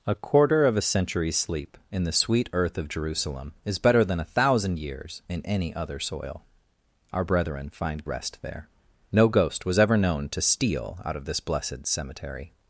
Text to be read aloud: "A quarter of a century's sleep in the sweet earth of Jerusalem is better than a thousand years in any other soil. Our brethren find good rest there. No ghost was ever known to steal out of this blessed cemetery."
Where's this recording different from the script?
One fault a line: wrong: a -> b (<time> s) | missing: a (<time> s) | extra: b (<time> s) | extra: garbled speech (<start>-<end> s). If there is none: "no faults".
missing: good (8.1 s)